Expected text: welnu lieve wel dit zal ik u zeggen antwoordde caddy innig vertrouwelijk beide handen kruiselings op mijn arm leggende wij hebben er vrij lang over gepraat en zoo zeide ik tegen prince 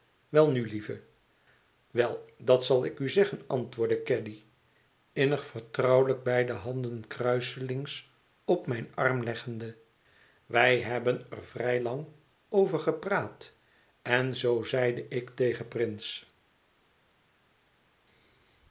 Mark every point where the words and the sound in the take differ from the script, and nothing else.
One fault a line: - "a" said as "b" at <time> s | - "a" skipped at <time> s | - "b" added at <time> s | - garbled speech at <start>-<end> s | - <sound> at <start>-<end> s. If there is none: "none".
- "dit" said as "dat" at 2.4 s